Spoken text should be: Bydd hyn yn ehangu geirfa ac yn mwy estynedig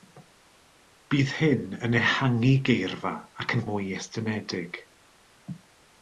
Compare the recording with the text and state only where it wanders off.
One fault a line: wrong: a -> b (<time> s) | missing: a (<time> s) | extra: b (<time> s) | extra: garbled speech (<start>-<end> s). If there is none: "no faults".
no faults